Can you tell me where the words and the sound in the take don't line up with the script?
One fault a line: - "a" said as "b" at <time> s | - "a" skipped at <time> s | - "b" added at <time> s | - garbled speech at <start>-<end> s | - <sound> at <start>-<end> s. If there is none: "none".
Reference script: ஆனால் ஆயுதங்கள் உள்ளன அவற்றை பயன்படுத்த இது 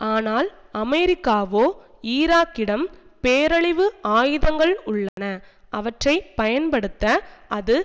- "அமெரிக்காவோ ஈராக்கிடம் பேரழிவு" added at 0.8 s
- dropout at 5.1-5.2 s
- "இது" said as "அது" at 7.5 s